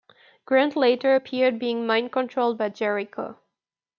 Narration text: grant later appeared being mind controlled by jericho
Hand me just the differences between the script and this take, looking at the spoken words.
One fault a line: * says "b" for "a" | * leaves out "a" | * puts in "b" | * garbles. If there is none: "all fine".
all fine